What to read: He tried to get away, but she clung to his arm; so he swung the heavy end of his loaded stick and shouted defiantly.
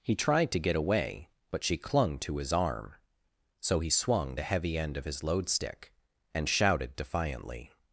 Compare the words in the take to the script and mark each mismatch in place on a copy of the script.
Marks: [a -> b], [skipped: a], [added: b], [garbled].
He tried to get away, but she clung to his arm; so he swung the heavy end of his [loaded -> load] stick and shouted defiantly.